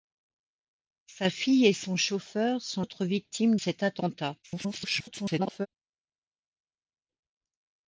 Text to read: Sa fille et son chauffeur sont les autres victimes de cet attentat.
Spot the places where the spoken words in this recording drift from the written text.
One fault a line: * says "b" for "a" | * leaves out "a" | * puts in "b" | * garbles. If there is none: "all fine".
* leaves out "les"
* leaves out "de"
* garbles